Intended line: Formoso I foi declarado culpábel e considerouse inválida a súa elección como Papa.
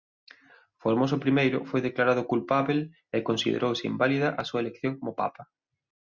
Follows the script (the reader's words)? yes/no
yes